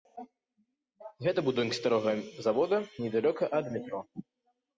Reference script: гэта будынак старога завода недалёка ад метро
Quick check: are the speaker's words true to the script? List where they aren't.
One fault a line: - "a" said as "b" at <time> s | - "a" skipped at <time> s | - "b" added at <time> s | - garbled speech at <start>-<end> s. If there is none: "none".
none